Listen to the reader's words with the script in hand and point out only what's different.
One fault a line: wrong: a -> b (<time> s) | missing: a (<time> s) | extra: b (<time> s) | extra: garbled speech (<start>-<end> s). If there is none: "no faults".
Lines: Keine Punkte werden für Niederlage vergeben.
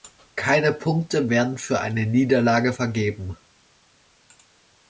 extra: eine (1.8 s)